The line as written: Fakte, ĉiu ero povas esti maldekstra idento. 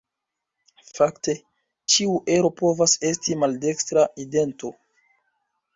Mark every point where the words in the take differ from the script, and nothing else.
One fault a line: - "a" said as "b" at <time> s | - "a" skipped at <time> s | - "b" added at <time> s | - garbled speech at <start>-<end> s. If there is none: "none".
none